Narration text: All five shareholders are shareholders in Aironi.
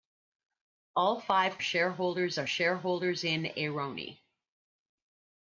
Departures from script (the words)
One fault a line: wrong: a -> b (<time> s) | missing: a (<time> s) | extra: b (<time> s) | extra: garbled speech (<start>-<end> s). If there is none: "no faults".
no faults